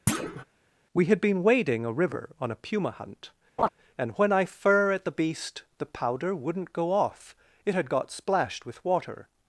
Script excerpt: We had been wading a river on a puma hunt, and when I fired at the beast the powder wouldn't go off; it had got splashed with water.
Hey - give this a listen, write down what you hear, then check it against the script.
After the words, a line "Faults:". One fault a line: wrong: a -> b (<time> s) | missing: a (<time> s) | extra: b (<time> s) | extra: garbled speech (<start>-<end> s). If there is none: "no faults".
We had been wading a river on a puma hunt, and when I fir at the beast the powder wouldn't go off; it had got splashed with water.
Faults:
wrong: fired -> fir (4.5 s)